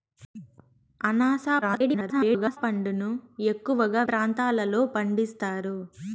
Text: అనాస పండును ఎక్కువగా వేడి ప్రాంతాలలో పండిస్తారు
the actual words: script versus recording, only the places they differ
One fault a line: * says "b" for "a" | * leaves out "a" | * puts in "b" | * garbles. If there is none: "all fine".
* garbles
* leaves out "వేడి"